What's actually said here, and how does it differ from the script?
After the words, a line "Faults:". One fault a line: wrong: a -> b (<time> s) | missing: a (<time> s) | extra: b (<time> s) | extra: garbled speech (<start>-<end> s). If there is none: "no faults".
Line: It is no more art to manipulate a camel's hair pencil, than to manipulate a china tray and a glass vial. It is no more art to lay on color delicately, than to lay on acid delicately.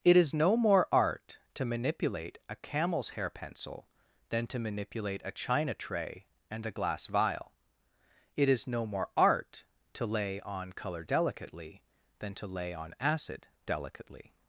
It is no more art to manipulate a camel's hair pencil, than to manipulate a china tray and a glass vial. It is no more art to lay on color delicately, than to lay on acid delicately.
Faults:
no faults